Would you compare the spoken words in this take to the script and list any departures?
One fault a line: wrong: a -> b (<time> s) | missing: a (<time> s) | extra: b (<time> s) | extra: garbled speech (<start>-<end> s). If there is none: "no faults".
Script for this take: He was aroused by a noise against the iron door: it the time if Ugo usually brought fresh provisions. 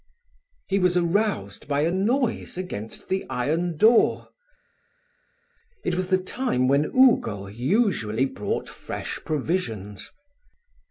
extra: was (5.9 s)
wrong: if -> when (6.7 s)